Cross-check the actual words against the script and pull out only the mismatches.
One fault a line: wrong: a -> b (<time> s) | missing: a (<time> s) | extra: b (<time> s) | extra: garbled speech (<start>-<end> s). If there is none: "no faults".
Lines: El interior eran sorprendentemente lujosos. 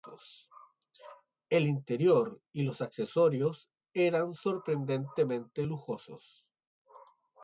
extra: y los accesorios (2.5 s)